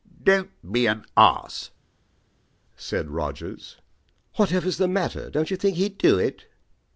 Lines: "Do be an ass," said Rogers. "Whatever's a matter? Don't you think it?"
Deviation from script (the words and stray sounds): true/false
true